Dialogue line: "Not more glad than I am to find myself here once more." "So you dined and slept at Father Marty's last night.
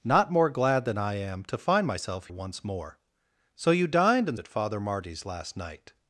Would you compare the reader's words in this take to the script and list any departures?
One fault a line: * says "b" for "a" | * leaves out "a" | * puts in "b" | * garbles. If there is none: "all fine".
* leaves out "here"
* leaves out "slept"